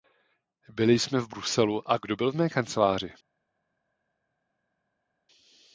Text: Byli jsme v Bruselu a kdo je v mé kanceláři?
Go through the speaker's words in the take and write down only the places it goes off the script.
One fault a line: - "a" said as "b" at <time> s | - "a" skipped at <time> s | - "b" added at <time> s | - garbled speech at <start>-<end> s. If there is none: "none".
- "je" said as "byl" at 2.1 s